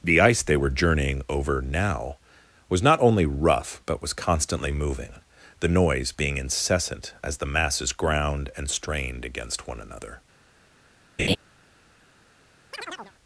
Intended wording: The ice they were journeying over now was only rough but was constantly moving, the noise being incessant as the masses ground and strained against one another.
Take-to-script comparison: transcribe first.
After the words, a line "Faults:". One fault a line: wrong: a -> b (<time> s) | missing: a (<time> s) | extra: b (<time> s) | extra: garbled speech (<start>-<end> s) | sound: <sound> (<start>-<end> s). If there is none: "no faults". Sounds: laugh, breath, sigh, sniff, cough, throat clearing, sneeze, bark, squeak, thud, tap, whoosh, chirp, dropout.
The ice they were journeying over now was not only rough but was constantly moving, the noise being incessant as the masses ground and strained against one another.
Faults:
extra: not (2.8 s)
sound: laugh (11.2-11.4 s)
sound: chirp (12.7-13.1 s)